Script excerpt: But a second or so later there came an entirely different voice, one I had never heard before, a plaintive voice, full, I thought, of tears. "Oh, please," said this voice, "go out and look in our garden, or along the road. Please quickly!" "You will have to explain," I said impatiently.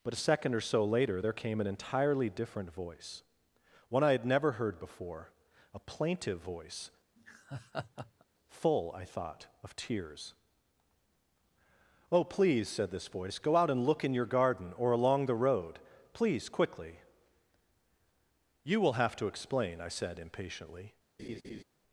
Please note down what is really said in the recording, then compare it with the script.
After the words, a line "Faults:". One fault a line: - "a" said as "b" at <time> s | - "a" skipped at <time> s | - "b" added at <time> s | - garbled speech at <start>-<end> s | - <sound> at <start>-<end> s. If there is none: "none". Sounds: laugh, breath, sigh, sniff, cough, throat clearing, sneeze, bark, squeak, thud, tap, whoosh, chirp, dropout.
But a second or so later there came an entirely different voice, one I had never heard before, a plaintive voice, full, I thought, of tears. "Oh, please," said this voice, "go out and look in your garden, or along the road. Please quickly!" "You will have to explain," I said impatiently.
Faults:
- laugh at 7.2-8.2 s
- "our" said as "your" at 14.1 s
- laugh at 21.2-21.6 s